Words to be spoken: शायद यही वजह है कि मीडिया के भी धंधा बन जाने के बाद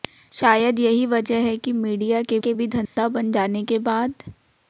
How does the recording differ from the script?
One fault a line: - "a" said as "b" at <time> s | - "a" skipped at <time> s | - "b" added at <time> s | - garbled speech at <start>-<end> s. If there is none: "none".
- "के" added at 2.4 s